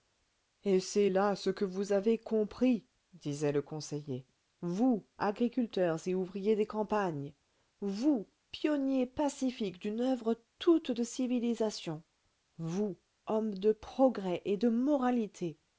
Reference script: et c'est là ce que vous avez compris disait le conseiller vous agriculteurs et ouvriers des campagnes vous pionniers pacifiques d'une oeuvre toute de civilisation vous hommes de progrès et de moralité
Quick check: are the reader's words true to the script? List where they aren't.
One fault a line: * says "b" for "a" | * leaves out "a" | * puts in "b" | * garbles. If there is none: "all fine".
all fine